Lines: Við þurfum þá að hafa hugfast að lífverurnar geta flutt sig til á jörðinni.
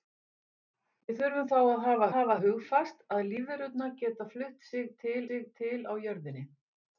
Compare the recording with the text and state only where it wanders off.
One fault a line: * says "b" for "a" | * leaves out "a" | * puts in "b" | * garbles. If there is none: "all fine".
* puts in "hafa"
* puts in "sig til"